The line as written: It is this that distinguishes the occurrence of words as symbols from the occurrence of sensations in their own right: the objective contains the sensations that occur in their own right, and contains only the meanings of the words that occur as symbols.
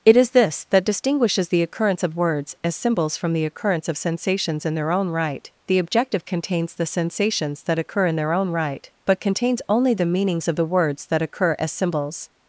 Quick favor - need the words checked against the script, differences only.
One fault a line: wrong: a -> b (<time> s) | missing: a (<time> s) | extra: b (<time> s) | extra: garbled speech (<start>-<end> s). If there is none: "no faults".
wrong: and -> but (9.0 s)